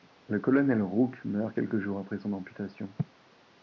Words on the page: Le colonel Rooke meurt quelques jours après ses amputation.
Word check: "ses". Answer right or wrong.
wrong